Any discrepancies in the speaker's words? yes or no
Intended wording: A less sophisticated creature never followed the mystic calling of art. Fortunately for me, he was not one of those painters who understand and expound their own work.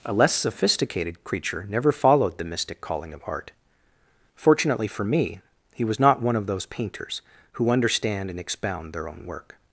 no